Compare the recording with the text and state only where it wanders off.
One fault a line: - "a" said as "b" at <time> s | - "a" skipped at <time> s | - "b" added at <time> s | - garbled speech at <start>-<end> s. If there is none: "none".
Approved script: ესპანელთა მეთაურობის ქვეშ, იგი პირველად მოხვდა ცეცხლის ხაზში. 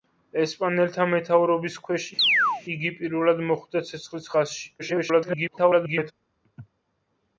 - garbled speech at 4.8-6.1 s